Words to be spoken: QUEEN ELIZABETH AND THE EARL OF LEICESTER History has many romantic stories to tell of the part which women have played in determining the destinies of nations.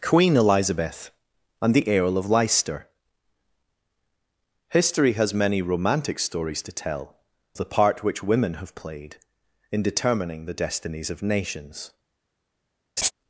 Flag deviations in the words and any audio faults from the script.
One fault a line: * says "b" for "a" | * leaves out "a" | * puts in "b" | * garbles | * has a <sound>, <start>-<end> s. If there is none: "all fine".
* leaves out "of"
* has a laugh, 13.0-13.1 s